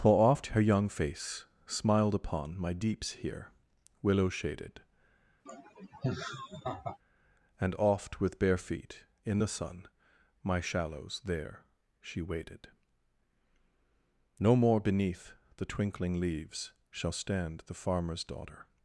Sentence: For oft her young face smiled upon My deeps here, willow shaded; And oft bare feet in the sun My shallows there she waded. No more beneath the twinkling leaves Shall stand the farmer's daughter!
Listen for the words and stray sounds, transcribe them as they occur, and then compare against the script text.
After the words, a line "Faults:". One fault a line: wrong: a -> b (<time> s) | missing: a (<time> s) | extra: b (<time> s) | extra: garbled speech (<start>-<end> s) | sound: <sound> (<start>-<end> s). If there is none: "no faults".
For oft her young face smiled upon My deeps here, willow shaded; And oft with bare feet in the sun My shallows there she waded. No more beneath the twinkling leaves Shall stand the farmer's daughter!
Faults:
sound: laugh (5.5-7.0 s)
extra: with (8.2 s)